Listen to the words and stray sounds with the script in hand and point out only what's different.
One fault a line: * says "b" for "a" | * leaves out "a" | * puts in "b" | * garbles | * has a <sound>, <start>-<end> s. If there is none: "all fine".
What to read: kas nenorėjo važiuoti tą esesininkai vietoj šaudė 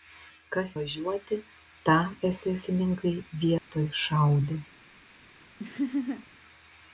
* leaves out "nenorėjo"
* has a dropout, 3.6-3.7 s
* has a laugh, 5.6-6.3 s